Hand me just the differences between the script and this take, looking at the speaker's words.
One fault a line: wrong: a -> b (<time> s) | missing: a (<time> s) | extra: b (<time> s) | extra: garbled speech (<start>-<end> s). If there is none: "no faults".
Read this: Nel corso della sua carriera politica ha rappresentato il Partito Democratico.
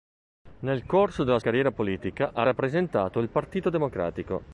missing: sua (1.4 s)